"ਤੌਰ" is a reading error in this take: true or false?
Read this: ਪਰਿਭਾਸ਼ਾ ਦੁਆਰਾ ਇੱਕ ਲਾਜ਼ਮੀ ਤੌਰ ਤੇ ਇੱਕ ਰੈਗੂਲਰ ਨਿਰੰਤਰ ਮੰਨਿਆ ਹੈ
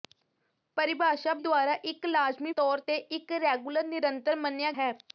false